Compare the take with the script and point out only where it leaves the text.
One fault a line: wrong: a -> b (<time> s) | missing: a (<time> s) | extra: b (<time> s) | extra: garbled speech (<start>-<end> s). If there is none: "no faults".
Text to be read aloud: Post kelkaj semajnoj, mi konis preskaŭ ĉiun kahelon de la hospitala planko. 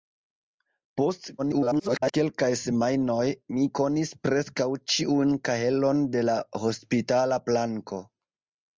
extra: garbled speech (1.4-2.1 s)